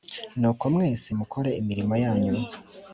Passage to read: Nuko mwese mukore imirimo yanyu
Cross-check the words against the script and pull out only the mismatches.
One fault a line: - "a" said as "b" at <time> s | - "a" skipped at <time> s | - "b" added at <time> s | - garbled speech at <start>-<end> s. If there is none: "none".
none